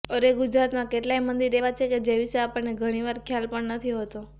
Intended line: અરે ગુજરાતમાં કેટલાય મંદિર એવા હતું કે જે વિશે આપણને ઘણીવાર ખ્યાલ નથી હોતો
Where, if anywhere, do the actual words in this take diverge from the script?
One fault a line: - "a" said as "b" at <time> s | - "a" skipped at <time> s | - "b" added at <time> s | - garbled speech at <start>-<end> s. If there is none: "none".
- "હતું" said as "છે" at 1.7 s
- "પણ" added at 3.5 s